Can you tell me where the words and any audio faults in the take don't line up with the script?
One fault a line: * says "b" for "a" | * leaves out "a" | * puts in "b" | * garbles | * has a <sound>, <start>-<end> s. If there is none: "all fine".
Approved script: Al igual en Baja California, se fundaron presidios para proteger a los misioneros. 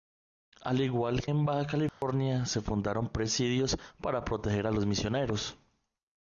* has a dropout, 1.9-2.0 s